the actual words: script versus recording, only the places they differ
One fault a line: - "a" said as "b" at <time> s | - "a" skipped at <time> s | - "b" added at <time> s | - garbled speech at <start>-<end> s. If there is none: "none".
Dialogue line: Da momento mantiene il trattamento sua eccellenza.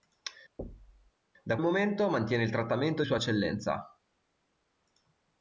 none